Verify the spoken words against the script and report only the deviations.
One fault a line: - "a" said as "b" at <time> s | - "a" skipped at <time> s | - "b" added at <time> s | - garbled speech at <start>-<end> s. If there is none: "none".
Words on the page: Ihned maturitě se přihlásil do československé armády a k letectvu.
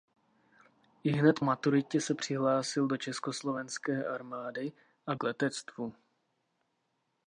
none